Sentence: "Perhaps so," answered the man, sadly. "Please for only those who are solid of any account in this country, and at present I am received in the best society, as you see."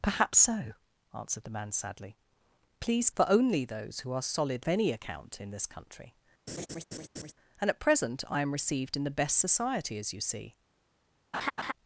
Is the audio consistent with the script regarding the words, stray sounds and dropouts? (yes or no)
no